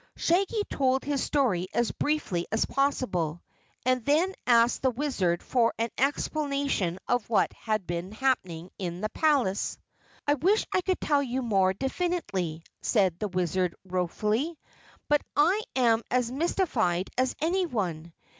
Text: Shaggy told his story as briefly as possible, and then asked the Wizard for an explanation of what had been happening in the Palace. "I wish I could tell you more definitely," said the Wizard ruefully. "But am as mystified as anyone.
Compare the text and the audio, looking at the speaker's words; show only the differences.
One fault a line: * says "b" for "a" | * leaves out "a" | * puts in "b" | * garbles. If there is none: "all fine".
* puts in "I"